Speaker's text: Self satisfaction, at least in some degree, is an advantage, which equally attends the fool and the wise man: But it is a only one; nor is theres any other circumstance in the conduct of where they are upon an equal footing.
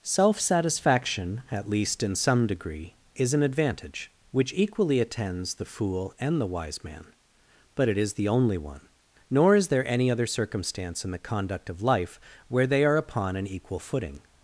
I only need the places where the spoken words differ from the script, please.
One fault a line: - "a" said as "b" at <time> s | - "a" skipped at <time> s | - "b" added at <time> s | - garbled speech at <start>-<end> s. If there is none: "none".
- "a" said as "the" at 8.2 s
- "theres" said as "there" at 9.7 s
- "life" added at 11.8 s